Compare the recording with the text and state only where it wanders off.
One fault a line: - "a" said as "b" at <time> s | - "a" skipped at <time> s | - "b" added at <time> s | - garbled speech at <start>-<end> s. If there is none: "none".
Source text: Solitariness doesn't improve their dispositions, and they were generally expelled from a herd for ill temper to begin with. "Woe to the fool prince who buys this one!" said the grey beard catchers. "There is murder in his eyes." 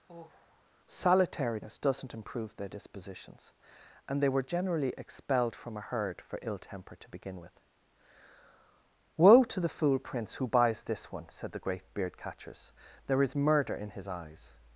- "grey" said as "great" at 11.6 s